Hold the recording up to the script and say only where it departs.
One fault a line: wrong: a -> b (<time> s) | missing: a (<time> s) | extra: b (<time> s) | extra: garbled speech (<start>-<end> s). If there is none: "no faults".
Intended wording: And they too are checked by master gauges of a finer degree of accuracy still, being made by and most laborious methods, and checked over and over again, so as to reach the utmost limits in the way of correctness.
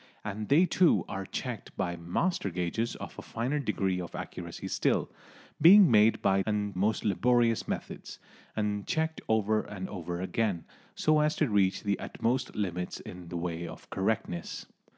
no faults